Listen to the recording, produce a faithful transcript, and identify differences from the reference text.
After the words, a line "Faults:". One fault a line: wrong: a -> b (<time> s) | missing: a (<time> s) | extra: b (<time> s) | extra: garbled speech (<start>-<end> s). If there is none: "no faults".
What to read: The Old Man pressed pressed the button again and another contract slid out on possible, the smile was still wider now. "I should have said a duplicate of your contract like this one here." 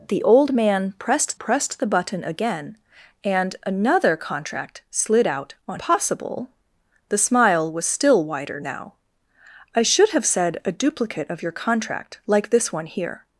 The Old Man pressed pressed the button again and another contract slid out on possible, the smile was still wider now. "I should have said a duplicate of your contract like this one here."
Faults:
no faults